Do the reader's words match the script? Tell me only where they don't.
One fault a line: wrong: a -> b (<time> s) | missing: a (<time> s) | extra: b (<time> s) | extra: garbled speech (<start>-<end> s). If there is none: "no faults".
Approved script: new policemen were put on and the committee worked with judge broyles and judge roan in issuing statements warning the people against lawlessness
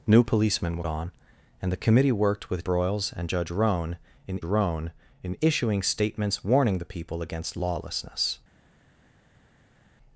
missing: put (0.8 s)
missing: judge (2.6 s)
extra: roan in (4.4 s)